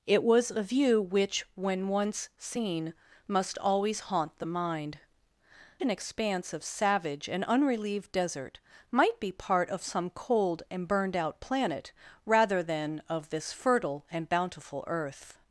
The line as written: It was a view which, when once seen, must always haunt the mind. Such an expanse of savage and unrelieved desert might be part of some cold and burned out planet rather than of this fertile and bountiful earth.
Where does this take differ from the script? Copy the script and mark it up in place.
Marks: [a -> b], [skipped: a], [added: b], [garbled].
It was a view which, when once seen, must always haunt the mind. [skipped: Such] an expanse of savage and unrelieved desert might be part of some cold and burned out planet rather than of this fertile and bountiful earth.